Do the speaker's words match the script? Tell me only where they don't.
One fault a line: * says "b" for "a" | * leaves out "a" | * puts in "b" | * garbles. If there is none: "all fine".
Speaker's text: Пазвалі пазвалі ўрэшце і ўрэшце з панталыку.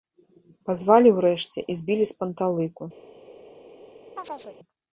* leaves out "пазвалі"
* says "збілі" for "ўрэшце"